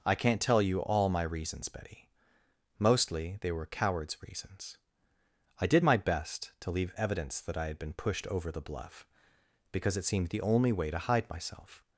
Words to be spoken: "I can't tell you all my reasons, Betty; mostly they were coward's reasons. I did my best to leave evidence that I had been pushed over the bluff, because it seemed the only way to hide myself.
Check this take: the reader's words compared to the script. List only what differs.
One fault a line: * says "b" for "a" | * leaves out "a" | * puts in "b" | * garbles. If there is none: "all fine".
all fine